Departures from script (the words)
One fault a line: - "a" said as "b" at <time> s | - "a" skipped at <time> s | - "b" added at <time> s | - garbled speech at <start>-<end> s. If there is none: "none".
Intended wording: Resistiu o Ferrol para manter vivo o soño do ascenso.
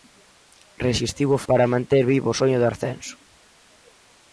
- "Ferrol" skipped at 1.4 s